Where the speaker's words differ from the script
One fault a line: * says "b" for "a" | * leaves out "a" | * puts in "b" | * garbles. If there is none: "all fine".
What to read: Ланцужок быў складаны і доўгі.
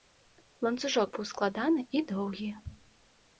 all fine